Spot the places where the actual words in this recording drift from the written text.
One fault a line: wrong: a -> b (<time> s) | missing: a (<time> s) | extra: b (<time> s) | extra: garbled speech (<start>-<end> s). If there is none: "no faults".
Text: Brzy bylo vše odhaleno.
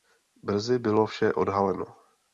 no faults